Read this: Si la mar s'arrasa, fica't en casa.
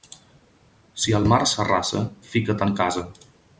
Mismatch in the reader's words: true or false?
true